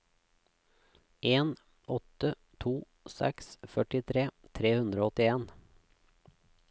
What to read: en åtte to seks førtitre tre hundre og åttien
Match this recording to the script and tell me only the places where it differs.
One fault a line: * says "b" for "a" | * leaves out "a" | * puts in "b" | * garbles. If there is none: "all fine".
all fine